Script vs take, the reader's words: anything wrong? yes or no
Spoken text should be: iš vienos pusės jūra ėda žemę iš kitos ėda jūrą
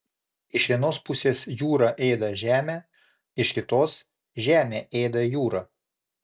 yes